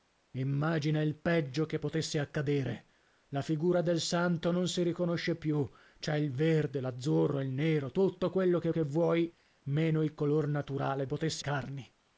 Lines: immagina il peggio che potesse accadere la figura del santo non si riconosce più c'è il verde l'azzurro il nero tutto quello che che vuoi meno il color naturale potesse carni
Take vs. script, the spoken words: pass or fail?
pass